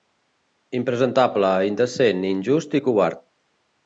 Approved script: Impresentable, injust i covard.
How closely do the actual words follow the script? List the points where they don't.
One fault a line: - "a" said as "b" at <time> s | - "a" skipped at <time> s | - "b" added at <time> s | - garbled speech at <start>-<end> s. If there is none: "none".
- "indecent" added at 1.7 s